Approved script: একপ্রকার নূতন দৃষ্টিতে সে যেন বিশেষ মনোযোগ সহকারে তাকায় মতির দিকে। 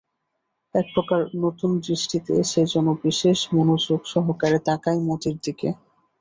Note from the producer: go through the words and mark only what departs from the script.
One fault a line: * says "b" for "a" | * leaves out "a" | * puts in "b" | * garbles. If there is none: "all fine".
all fine